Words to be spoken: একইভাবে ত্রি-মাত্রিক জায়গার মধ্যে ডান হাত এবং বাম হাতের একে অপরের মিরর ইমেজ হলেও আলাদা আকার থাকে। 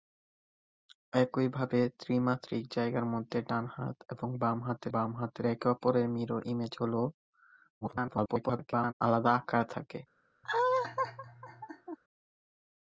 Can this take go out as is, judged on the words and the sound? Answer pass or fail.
fail